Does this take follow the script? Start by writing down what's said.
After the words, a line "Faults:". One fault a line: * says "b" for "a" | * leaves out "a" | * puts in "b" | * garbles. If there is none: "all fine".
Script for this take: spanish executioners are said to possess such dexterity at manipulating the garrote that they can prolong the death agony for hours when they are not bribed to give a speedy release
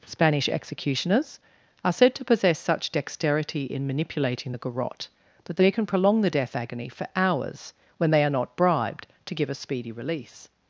spanish executioners are said to possess such dexterity in manipulating the garrote that they can prolong the death agony for hours when they are not bribed to give a speedy release
Faults:
* says "in" for "at"